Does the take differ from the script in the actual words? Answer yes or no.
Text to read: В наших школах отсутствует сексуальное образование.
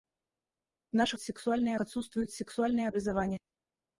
yes